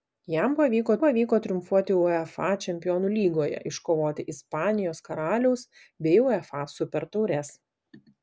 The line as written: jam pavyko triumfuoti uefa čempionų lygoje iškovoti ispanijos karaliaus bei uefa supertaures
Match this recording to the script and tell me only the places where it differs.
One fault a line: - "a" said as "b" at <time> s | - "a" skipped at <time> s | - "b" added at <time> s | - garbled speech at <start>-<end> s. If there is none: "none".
- "pavyko" added at 1.0 s